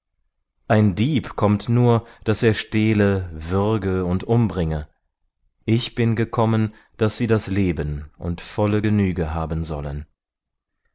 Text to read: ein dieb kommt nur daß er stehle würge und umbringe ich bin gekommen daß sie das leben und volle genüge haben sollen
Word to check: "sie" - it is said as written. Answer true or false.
true